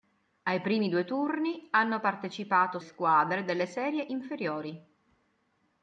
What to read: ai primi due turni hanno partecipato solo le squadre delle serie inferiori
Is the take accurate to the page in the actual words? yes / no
no